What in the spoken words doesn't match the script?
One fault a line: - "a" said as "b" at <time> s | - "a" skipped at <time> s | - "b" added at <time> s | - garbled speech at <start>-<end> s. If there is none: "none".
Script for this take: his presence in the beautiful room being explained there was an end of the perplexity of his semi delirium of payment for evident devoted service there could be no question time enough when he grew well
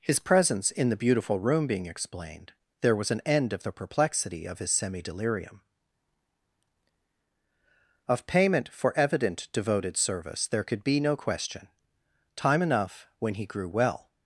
none